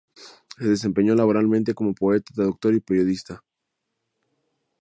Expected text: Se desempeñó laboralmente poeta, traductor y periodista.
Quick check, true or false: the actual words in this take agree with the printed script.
false